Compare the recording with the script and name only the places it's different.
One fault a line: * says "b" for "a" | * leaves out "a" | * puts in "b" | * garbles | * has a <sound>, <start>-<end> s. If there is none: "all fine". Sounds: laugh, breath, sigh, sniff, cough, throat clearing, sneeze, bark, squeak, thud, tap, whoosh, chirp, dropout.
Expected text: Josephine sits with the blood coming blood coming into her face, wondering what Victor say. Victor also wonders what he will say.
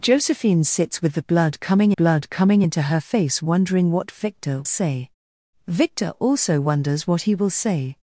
all fine